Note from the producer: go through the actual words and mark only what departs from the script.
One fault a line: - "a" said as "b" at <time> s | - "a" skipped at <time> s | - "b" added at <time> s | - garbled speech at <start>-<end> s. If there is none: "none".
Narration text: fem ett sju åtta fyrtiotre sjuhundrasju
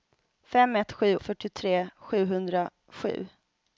- "åtta" skipped at 1.2 s